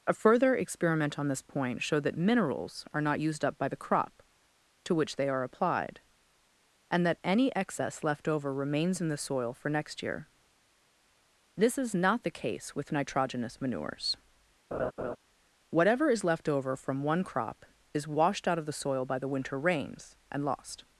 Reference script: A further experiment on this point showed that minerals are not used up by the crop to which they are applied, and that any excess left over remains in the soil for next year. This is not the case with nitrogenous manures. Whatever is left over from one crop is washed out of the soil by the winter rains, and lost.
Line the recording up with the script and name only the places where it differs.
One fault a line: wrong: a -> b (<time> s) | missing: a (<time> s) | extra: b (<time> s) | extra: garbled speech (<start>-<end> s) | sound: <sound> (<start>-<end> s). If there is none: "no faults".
sound: laugh (14.7-15.2 s)